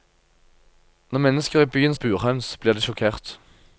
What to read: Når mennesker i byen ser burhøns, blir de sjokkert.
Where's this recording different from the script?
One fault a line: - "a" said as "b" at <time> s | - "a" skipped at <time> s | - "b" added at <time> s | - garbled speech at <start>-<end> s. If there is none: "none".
- "ser" skipped at 1.9 s